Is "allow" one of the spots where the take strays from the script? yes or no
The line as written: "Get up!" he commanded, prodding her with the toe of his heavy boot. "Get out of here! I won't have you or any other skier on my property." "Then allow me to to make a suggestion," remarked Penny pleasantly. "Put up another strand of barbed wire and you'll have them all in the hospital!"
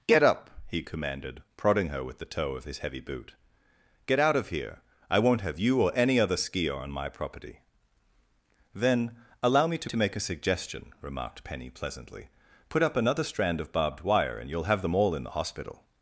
no